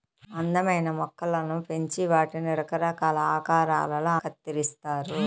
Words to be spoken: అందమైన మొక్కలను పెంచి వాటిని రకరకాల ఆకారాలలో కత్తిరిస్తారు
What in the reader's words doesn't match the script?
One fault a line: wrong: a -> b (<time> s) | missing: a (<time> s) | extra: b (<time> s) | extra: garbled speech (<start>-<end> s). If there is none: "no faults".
no faults